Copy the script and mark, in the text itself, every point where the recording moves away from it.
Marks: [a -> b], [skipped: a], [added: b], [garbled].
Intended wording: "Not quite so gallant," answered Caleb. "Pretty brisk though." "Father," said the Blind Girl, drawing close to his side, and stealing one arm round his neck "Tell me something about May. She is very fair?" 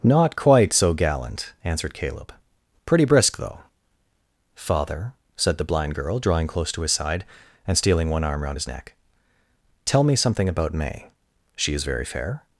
"Not quite so gallant," answered Caleb. "Pretty brisk though." "Father," said the Blind Girl, drawing close to his side, and stealing one arm round his neck "Tell me something about May. She is very fair?"